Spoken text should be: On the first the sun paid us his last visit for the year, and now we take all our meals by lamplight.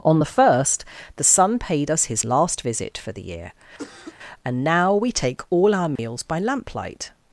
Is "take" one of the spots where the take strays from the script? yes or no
no